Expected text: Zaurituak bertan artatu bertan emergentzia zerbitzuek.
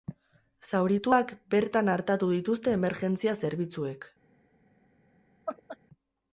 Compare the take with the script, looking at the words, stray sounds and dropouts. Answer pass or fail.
fail